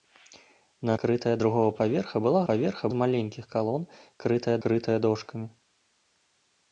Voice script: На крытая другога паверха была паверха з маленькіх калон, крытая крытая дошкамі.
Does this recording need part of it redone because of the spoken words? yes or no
no